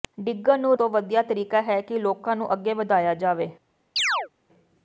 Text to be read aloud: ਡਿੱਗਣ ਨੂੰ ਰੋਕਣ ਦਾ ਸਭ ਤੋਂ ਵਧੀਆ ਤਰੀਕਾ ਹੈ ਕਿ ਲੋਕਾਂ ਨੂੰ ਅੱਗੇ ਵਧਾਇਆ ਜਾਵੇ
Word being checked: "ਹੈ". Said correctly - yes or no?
yes